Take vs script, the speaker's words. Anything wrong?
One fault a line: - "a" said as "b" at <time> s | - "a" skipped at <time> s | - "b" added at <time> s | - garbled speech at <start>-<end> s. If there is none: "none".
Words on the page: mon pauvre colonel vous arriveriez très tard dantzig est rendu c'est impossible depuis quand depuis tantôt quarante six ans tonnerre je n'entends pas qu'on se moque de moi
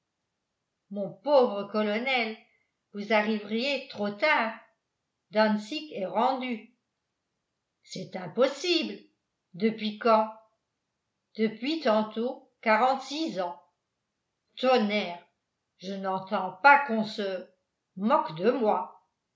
- "très" said as "trop" at 3.9 s